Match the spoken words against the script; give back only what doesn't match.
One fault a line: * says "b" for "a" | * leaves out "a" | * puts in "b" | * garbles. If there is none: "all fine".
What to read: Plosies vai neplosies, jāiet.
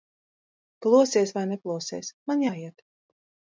* puts in "man"